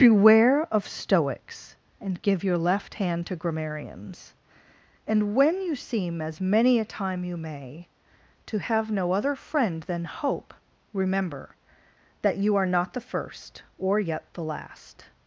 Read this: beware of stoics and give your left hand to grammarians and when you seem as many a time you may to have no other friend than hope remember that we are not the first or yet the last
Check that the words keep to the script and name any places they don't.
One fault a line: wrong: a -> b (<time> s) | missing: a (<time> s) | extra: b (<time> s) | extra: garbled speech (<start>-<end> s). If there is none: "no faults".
wrong: we -> you (12.4 s)